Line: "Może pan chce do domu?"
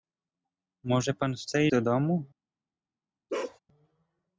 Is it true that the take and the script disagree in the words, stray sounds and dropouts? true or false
true